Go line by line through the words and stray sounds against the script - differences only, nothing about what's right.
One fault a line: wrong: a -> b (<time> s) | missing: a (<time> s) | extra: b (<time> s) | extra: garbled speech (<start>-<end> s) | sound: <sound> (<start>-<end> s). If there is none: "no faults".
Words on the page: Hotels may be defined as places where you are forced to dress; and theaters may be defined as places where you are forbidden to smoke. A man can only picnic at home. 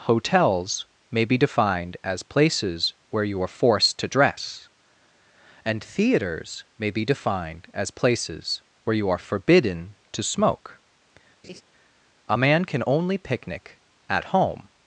sound: laugh (11.4-11.6 s)